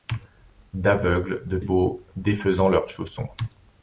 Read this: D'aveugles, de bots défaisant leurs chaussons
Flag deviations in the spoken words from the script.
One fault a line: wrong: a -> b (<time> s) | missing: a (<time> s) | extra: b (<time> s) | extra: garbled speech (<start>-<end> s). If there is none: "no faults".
no faults